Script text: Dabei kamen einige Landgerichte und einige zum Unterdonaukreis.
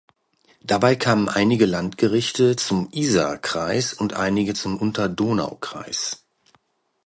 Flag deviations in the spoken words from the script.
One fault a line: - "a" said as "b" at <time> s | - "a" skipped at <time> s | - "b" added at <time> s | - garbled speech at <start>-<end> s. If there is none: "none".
- "zum Isarkreis" added at 2.6 s